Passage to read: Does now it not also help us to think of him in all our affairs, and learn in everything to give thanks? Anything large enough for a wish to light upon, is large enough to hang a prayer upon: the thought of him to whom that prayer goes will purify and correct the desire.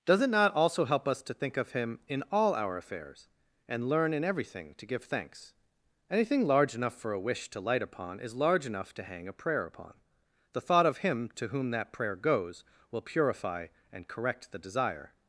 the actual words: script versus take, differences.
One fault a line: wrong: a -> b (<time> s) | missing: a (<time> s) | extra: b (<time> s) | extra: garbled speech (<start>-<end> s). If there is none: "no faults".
missing: now (0.2 s)